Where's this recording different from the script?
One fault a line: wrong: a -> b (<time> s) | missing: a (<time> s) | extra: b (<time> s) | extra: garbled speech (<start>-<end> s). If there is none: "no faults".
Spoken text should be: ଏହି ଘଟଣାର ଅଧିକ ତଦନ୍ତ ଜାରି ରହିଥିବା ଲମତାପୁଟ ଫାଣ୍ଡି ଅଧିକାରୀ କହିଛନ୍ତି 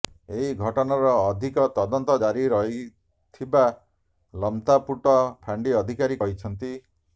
no faults